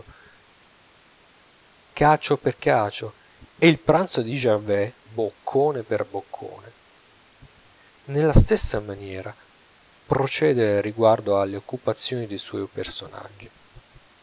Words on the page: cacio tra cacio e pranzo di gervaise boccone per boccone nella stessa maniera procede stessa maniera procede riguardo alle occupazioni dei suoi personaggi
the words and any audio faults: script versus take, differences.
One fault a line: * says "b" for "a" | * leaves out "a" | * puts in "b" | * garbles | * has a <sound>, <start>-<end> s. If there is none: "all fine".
* says "per" for "tra"
* puts in "il"
* leaves out "stessa maniera procede"